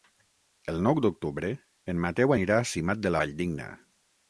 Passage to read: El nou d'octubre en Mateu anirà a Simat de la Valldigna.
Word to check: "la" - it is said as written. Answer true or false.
false